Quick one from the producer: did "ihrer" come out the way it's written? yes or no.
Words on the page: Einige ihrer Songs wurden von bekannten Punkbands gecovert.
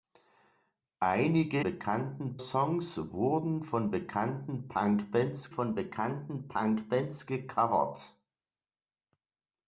no